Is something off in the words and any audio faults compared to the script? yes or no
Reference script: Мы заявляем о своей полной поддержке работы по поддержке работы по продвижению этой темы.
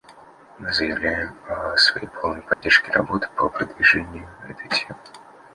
yes